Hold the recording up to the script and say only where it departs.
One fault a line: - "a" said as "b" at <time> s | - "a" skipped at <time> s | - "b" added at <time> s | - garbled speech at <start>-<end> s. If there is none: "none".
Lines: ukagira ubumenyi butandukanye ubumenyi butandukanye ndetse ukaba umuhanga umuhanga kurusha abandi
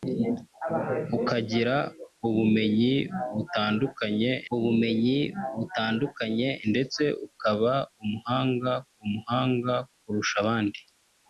none